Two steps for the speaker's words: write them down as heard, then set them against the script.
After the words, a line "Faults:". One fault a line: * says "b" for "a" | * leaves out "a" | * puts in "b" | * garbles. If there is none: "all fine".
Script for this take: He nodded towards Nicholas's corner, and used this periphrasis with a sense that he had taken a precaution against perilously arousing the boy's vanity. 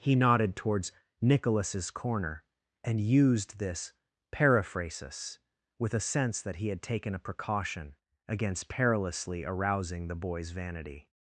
He nodded towards Nicholas's corner, and used this periphrasis with a sense that he had taken a precaution against perilously arousing the boy's vanity.
Faults:
all fine